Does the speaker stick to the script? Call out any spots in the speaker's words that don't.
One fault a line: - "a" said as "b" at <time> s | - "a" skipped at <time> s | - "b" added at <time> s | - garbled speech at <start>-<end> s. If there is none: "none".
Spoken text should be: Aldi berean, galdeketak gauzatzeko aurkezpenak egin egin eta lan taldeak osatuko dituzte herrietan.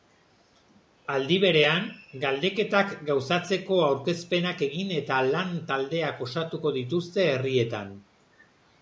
- "egin" skipped at 5.0 s